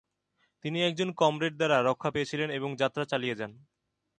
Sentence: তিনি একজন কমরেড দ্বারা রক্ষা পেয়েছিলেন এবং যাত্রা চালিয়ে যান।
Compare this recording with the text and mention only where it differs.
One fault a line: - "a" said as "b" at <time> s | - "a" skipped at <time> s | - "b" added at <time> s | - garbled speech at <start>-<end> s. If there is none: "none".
none